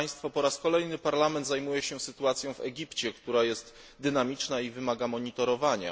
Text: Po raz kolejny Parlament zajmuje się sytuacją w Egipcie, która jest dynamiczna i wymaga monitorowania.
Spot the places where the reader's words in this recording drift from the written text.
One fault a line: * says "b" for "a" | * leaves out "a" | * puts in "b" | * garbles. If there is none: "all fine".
all fine